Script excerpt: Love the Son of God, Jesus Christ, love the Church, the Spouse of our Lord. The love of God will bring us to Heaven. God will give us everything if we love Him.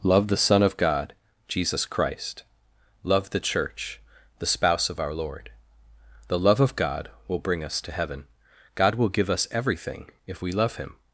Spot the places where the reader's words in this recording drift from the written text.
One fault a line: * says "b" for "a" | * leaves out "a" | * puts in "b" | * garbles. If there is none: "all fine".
all fine